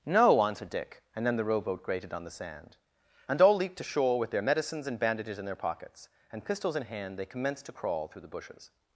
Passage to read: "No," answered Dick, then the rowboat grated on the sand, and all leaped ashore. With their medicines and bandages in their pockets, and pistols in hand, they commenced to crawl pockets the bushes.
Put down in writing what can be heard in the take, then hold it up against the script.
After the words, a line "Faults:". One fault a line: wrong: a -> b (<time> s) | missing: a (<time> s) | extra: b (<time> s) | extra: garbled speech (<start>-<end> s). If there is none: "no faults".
"No," answered Dick, and then the rowboat grated on the sand, and all leaped ashore. With their medicines and bandages in their pockets, and pistols in hand, they commenced to crawl through the bushes.
Faults:
extra: and (1.1 s)
wrong: pockets -> through (8.1 s)